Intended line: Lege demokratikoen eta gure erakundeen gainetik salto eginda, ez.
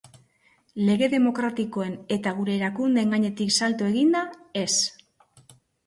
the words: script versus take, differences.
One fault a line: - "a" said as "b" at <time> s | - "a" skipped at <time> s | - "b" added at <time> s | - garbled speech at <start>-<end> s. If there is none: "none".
none